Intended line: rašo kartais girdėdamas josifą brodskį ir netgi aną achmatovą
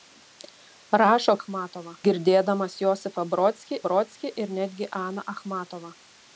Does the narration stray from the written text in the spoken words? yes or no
yes